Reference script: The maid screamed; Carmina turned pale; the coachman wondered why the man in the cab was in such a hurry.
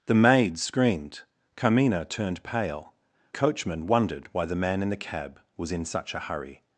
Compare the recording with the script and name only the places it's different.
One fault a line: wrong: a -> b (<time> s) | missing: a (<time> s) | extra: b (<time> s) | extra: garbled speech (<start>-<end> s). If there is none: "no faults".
missing: the (2.9 s)